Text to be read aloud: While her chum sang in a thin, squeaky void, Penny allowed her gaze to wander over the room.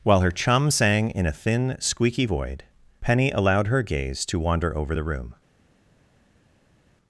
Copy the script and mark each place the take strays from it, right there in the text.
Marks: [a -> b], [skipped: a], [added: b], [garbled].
While her chum sang in a thin, squeaky void, Penny allowed her gaze to wander over the room.